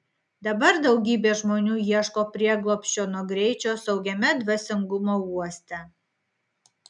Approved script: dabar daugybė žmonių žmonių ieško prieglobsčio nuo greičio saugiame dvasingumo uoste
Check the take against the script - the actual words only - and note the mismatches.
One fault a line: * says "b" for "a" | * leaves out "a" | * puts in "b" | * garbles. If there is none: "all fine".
* leaves out "žmonių"